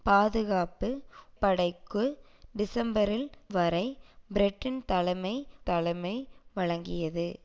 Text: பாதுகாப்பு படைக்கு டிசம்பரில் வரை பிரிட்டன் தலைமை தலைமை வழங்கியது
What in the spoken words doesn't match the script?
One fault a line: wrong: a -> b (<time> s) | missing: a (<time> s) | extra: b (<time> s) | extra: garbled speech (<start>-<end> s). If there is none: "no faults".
no faults